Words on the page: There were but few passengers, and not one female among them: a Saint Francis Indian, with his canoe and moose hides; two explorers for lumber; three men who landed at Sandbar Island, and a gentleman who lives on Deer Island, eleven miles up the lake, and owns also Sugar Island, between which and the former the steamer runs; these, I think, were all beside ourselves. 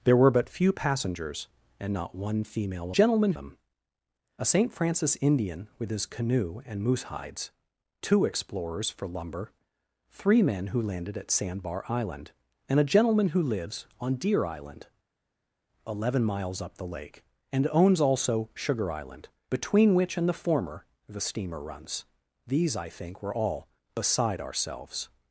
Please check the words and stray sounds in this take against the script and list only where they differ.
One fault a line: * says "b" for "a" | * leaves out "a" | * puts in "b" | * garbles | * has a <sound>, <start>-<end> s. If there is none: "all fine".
* says "gentleman" for "among"